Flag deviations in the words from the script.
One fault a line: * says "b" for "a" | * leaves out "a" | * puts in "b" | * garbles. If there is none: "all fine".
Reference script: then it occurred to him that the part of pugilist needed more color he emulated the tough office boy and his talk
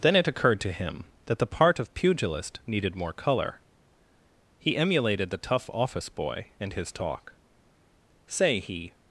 * puts in "say he"